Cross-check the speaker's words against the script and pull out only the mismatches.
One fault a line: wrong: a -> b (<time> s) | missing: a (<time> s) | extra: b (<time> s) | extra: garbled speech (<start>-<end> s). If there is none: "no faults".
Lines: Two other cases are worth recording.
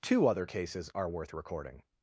no faults